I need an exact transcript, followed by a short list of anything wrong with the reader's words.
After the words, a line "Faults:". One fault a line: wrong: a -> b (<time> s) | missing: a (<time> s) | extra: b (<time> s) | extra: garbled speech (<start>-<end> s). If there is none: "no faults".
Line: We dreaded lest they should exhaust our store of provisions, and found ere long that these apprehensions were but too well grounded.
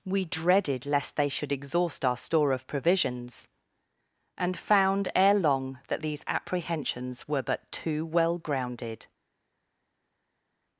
We dreaded lest they should exhaust our store of provisions, and found ere long that these apprehensions were but too well grounded.
Faults:
no faults